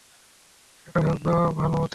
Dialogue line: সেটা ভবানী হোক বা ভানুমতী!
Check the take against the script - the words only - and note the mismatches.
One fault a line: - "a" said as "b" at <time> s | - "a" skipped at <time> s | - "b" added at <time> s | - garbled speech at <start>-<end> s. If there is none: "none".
- "ভবানী" skipped at 1.0 s